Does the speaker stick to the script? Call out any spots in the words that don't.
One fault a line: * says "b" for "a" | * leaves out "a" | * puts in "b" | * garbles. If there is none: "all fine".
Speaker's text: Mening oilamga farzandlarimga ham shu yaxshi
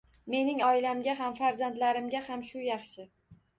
* puts in "ham"